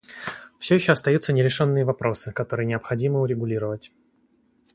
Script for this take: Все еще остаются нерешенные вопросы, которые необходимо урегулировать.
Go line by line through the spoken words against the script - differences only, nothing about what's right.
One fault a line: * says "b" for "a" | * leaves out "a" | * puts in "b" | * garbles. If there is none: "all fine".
all fine